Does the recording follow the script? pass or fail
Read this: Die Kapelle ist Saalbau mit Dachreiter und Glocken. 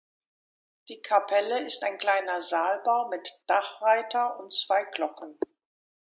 fail